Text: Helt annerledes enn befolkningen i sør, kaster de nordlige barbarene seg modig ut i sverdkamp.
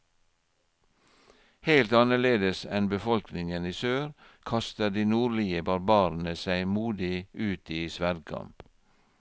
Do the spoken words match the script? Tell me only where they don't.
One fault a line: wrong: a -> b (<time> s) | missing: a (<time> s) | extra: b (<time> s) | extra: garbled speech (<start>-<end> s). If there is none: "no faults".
no faults